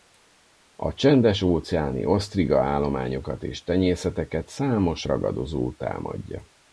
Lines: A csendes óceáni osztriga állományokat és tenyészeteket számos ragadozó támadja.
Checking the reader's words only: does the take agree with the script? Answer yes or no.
yes